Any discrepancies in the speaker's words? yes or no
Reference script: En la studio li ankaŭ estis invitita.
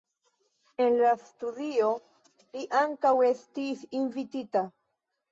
no